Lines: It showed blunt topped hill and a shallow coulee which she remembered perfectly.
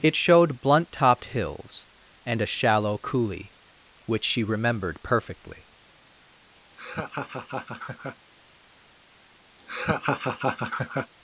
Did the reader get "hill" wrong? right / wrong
wrong